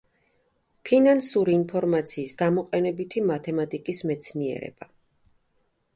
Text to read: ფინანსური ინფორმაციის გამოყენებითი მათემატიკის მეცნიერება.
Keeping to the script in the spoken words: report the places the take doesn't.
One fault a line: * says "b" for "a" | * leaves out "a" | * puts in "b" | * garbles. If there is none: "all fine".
all fine